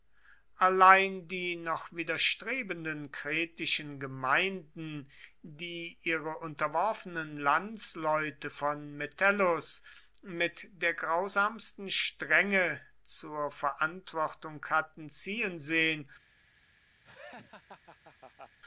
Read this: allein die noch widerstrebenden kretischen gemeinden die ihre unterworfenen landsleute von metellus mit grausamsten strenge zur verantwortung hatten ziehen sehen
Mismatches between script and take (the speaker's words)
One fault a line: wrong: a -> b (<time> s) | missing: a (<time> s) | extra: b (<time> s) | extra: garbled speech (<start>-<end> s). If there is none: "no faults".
extra: der (10.7 s)